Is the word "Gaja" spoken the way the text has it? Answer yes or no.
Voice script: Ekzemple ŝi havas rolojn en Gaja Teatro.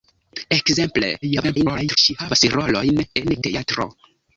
no